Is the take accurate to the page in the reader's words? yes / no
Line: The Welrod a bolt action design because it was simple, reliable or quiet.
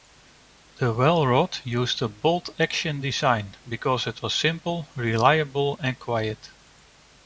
no